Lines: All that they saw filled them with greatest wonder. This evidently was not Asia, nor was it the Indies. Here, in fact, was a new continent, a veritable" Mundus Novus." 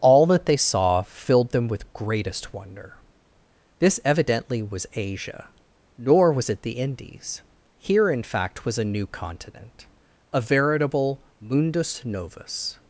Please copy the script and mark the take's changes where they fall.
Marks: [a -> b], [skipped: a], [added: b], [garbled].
All that they saw filled them with greatest wonder. This evidently was [skipped: not] Asia, nor was it the Indies. Here, in fact, was a new continent, a veritable" Mundus Novus."